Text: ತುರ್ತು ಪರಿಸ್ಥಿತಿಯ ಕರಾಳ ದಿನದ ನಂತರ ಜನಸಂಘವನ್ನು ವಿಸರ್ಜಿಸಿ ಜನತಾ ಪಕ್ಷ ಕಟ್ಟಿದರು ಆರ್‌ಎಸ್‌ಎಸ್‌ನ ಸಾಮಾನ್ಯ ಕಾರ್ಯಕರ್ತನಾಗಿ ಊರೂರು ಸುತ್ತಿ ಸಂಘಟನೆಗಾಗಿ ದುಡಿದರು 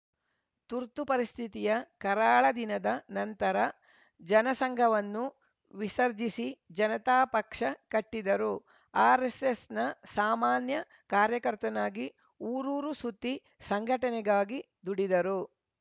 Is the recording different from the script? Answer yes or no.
no